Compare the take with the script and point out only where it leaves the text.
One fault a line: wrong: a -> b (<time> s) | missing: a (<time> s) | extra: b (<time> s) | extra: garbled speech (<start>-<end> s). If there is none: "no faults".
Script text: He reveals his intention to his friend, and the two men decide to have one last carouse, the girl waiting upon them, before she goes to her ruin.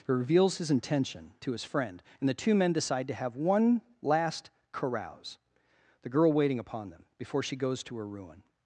no faults